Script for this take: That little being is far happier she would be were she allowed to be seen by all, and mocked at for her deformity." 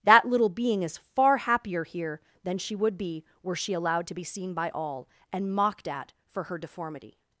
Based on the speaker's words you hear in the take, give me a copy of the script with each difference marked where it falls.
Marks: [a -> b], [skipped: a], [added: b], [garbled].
That little being is far happier [added: here than] she would be were she allowed to be seen by all, and mocked at for her deformity."